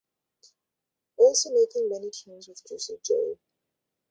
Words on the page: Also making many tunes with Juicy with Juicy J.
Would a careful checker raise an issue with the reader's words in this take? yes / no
yes